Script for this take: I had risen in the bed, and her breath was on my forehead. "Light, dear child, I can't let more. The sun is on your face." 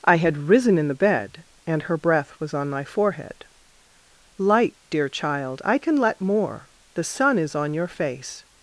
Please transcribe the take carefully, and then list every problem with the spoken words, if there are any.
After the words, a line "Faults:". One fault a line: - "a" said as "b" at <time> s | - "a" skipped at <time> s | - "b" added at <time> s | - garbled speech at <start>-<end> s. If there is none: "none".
I had risen in the bed, and her breath was on my forehead. "Light, dear child, I can let more. The sun is on your face."
Faults:
- "can't" said as "can" at 5.8 s